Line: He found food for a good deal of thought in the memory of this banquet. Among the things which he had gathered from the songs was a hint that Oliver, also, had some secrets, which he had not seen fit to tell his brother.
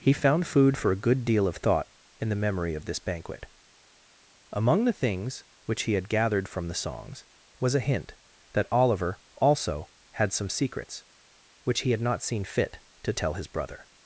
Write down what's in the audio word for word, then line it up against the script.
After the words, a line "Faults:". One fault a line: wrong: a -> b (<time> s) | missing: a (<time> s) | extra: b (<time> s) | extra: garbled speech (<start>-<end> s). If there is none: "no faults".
He found food for a good deal of thought in the memory of this banquet. Among the things which he had gathered from the songs was a hint that Oliver, also, had some secrets, which he had not seen fit to tell his brother.
Faults:
no faults